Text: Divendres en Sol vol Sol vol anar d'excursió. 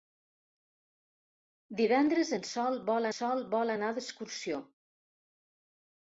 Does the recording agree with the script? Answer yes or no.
yes